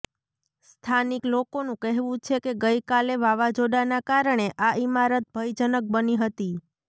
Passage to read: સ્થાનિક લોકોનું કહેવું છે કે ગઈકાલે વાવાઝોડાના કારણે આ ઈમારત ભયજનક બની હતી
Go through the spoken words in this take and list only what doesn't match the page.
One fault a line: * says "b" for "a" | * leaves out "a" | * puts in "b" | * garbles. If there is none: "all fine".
all fine